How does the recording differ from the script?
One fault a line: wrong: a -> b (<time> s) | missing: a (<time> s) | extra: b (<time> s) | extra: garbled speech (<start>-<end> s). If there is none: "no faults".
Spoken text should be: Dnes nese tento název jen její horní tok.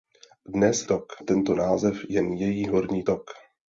wrong: nese -> tok (0.8 s)